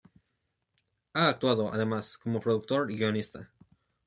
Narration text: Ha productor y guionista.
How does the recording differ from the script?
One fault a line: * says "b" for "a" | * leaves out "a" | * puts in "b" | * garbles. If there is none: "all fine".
* puts in "actuado además como"